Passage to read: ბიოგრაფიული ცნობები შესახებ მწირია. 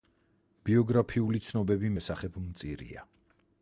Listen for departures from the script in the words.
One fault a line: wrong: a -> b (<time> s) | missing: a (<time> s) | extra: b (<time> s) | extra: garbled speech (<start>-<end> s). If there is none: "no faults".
no faults